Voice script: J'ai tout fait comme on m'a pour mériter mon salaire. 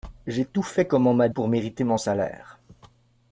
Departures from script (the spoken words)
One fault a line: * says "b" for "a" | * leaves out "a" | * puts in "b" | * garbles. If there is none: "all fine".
all fine